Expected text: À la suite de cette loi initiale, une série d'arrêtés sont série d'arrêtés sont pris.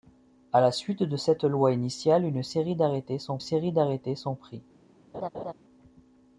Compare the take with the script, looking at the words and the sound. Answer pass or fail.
fail